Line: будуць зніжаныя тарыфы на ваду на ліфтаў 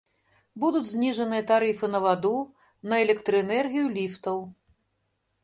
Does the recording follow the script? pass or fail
fail